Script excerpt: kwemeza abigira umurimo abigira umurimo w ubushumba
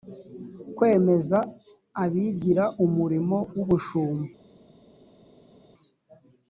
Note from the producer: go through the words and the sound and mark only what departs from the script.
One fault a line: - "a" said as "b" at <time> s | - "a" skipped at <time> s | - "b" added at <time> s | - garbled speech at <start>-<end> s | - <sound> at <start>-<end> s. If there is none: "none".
- "abigira umurimo" skipped at 3.4 s